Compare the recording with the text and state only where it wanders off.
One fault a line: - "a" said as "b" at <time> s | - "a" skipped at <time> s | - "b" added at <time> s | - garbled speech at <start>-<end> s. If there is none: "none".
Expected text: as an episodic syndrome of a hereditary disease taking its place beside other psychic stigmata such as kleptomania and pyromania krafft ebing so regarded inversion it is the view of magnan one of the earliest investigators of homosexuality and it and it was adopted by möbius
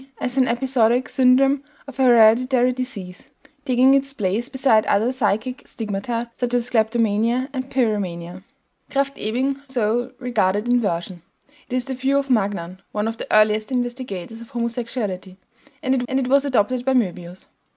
none